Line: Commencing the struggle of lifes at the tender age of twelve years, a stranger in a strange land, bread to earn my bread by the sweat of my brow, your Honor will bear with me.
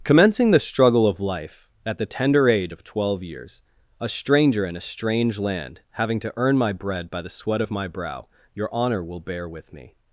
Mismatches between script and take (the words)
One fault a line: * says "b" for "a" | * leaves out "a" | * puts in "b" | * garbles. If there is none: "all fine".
* says "life" for "lifes"
* says "having" for "bread"